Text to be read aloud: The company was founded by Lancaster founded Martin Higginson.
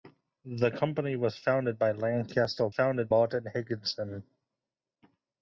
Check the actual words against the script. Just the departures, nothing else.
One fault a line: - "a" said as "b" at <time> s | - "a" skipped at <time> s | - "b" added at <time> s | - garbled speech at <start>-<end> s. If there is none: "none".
none